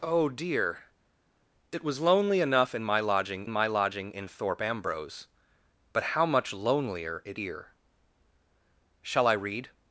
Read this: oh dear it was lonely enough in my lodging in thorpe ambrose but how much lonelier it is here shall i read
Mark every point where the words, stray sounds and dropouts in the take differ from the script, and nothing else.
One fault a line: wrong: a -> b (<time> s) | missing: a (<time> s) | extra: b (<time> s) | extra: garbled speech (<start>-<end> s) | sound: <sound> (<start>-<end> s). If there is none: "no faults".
extra: my lodging (3.5 s)
missing: is (7.4 s)